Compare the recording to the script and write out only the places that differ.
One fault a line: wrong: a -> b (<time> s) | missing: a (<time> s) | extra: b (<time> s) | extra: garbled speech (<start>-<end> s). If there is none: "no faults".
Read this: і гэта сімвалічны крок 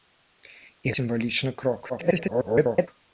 missing: гэта (0.9 s)
extra: garbled speech (1.9-2.9 s)